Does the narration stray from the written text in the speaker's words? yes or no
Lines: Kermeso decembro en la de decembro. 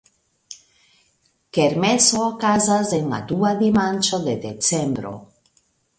yes